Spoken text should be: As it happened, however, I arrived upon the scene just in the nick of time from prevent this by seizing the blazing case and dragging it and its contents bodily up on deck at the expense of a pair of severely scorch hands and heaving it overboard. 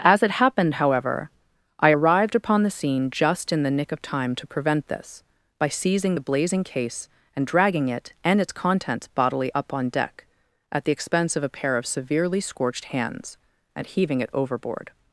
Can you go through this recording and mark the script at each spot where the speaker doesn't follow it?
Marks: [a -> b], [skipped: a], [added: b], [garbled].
As it happened, however, I arrived upon the scene just in the nick of time [from -> to] prevent this by seizing the blazing case and dragging it and its contents bodily up on deck at the expense of a pair of severely [scorch -> scorched] hands and heaving it overboard.